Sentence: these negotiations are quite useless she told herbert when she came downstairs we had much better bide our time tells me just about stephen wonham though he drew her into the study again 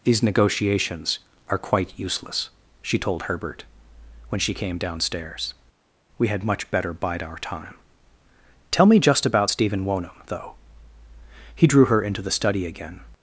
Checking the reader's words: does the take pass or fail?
fail